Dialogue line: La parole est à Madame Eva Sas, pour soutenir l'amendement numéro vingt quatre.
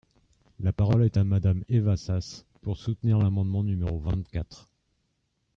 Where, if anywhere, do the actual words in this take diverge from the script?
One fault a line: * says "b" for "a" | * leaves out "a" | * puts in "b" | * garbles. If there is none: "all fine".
all fine